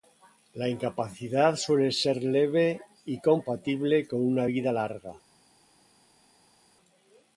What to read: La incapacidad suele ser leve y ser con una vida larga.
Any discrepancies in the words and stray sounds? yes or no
yes